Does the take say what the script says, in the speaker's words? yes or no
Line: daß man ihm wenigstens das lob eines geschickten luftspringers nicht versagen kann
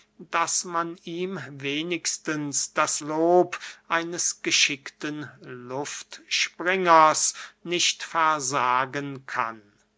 yes